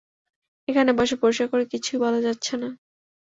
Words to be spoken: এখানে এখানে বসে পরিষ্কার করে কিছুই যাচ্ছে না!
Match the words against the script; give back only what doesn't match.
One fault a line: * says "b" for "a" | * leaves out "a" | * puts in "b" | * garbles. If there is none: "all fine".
* leaves out "এখানে"
* puts in "বলা"